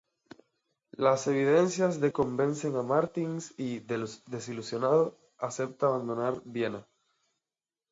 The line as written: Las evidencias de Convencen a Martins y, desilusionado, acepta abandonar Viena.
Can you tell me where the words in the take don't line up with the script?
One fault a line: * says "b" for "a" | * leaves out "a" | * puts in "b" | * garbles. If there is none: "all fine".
all fine